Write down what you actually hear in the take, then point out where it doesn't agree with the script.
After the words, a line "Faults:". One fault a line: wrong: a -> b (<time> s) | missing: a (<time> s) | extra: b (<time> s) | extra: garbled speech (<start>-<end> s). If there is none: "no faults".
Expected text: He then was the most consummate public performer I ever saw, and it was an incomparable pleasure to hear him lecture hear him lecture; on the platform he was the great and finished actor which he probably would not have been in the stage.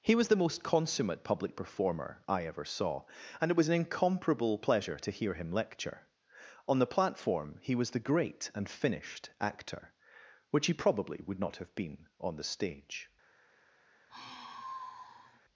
He was the most consummate public performer I ever saw, and it was an incomparable pleasure to hear him lecture; on the platform he was the great and finished actor which he probably would not have been on the stage.
Faults:
missing: then (0.1 s)
missing: hear him lecture (6.1 s)
wrong: in -> on (12.2 s)